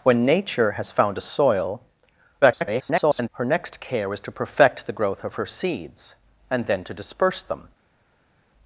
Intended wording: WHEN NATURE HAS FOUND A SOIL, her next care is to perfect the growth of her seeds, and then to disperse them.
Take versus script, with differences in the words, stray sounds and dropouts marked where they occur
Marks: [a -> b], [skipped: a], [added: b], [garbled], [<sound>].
WHEN NATURE HAS FOUND A SOIL, [garbled] her next care is to perfect the growth of her seeds, and then to disperse them.